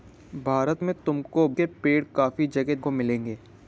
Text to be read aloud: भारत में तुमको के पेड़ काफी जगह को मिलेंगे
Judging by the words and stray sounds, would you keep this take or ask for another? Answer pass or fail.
pass